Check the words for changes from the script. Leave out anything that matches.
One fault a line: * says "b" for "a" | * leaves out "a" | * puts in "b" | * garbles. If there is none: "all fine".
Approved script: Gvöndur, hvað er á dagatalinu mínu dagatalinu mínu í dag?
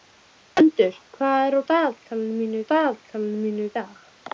all fine